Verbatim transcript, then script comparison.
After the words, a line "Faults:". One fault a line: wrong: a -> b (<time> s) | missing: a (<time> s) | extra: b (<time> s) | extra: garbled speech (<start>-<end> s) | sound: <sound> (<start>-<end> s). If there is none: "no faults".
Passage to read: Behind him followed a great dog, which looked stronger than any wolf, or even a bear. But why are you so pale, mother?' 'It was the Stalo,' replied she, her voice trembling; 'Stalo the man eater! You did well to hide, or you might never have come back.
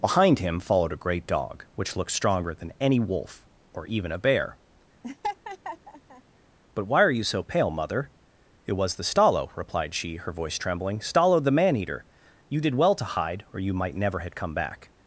Behind him followed a great dog, which looked stronger than any wolf, or even a bear. But why are you so pale, mother?' 'It was the Stalo,' replied she, her voice trembling; 'Stalo the man eater! You did well to hide, or you might never have come back.
Faults:
sound: laugh (5.0-6.2 s)